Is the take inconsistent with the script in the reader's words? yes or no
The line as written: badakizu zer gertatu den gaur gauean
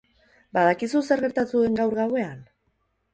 no